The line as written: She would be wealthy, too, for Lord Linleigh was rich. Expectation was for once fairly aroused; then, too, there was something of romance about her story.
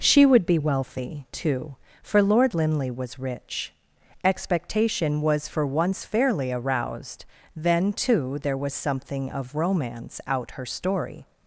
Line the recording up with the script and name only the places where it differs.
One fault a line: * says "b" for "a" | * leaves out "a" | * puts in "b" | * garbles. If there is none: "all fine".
* says "out" for "about"